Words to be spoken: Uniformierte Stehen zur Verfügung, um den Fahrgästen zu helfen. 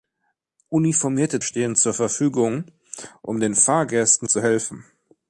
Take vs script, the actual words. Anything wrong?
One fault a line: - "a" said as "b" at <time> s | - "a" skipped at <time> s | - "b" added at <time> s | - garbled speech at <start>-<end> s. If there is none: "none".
none